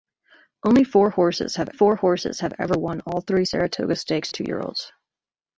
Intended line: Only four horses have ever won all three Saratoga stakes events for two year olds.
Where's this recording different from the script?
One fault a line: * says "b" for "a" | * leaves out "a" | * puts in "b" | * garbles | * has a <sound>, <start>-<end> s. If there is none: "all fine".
* puts in "four horses have"
* leaves out "events for"